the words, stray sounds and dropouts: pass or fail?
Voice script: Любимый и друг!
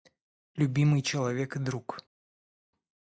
fail